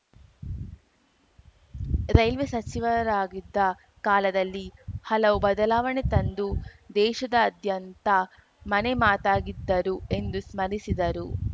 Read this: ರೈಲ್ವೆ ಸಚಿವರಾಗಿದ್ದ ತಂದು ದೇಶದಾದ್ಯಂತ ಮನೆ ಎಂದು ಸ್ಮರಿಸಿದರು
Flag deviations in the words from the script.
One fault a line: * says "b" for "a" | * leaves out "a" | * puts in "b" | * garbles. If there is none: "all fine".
* puts in "ಕಾಲದಲ್ಲಿ ಹಲವು ಬದಲಾವಣೆ"
* puts in "ಮಾತಾಗಿದ್ದರು"